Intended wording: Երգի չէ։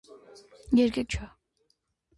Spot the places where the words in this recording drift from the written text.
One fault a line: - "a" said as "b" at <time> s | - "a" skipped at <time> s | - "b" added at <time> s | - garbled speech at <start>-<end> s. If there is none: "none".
none